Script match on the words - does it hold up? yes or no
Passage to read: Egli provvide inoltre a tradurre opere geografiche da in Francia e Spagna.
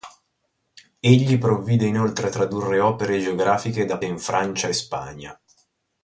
yes